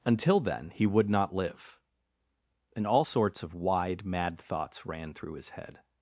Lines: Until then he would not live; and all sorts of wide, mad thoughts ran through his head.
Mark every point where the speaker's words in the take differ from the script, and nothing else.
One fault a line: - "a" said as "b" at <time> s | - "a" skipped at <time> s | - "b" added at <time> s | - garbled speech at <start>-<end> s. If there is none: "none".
none